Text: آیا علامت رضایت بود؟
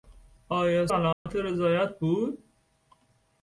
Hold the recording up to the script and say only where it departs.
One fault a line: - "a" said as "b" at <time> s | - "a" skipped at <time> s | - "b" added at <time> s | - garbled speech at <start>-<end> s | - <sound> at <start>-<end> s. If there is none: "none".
- dropout at 1.1-1.3 s